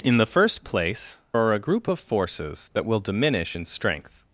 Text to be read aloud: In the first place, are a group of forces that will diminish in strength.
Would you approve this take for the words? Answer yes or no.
yes